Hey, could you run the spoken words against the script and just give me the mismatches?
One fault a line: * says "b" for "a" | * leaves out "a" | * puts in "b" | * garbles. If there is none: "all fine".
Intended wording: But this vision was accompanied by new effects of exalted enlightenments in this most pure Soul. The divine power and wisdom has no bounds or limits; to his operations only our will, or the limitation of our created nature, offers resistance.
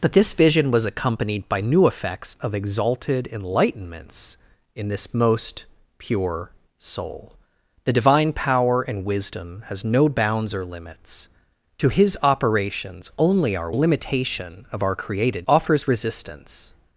* leaves out "will or the"
* leaves out "nature"